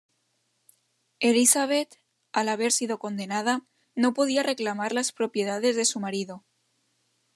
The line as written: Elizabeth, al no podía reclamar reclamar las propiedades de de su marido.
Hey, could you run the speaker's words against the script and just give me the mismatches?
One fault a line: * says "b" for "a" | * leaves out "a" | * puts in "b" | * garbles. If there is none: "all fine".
* puts in "haber sido condenada"
* leaves out "reclamar"
* leaves out "de"